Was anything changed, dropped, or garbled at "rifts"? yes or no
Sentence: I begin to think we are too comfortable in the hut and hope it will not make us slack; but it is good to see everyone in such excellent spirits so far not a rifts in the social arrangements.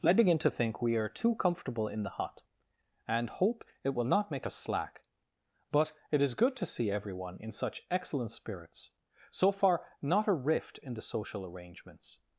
yes